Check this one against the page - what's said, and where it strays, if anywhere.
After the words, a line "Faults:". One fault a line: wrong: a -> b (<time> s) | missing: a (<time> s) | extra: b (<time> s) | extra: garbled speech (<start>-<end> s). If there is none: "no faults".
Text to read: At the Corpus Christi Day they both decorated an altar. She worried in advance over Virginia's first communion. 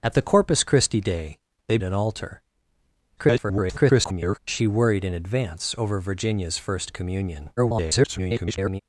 At the Corpus Christi Day they an altar. [garbled] She worried in advance over Virginia's first communion. [garbled]
Faults:
missing: both decorated (1.8 s)
extra: garbled speech (3.2-4.4 s)
extra: garbled speech (7.6-8.8 s)